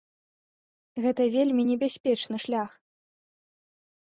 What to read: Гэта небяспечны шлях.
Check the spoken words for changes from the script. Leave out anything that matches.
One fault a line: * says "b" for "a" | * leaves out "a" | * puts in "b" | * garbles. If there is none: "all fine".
* puts in "вельмі"